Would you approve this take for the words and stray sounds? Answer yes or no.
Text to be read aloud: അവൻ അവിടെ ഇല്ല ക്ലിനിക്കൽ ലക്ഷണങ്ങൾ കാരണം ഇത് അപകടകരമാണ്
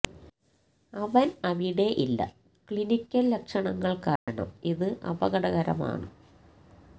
no